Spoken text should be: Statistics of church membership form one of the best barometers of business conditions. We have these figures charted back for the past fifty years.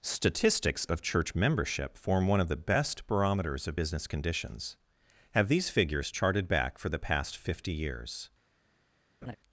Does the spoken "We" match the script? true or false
false